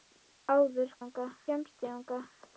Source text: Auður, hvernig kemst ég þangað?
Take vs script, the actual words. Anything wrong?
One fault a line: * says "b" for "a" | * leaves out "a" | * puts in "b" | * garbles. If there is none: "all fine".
* says "þangað" for "hvernig"